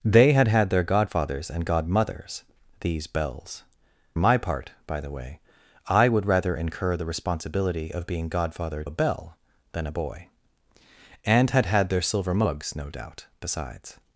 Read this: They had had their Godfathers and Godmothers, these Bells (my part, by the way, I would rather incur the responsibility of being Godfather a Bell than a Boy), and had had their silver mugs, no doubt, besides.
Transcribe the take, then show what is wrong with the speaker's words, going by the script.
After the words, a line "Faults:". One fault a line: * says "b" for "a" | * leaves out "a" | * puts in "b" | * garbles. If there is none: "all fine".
They had had their Godfathers and Godmothers, these Bells (my part, by the way, I would rather incur the responsibility of being Godfather a Bell than a Boy), and had had their silver mugs, no doubt, besides.
Faults:
all fine